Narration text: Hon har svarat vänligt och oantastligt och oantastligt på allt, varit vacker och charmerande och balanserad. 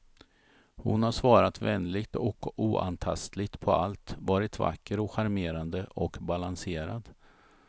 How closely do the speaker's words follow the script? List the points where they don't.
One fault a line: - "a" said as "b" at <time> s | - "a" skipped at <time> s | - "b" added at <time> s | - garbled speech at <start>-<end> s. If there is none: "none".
- "och oantastligt" skipped at 3.6 s